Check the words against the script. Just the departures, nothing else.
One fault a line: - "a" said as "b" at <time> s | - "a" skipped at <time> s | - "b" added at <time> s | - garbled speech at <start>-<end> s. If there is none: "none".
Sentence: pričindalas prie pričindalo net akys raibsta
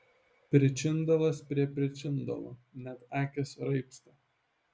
none